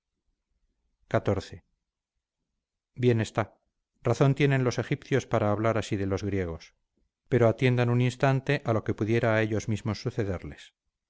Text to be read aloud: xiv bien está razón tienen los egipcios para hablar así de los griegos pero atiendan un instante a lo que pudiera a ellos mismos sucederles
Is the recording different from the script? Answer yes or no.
no